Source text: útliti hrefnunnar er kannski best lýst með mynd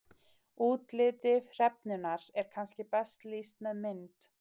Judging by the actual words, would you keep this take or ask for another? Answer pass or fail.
pass